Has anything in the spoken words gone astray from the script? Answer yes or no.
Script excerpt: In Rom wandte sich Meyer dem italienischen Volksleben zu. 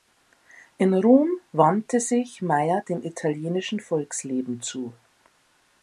no